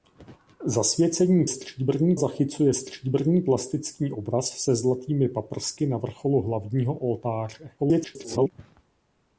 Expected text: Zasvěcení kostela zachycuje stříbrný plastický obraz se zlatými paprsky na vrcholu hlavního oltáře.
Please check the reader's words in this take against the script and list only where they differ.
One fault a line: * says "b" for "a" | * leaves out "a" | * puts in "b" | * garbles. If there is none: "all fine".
* says "stříbrný" for "kostela"
* garbles